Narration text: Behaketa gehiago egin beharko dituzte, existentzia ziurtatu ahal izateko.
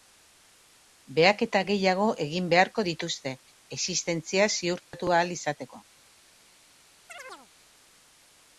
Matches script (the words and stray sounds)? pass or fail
fail